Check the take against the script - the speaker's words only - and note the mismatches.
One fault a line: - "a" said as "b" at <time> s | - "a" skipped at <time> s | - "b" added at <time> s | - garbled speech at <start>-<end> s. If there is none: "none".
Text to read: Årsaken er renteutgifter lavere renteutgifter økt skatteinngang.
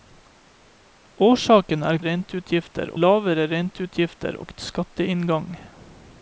none